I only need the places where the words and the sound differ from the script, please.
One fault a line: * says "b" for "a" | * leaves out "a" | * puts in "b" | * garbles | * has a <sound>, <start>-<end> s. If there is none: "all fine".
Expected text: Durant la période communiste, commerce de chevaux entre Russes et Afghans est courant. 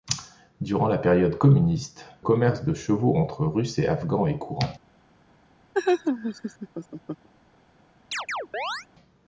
* has a laugh, 5.7-7.3 s
* has a chirp, 8.1-8.9 s